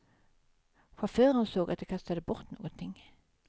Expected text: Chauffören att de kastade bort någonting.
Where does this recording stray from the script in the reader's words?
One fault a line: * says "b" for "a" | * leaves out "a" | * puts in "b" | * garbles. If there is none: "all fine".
* puts in "såg"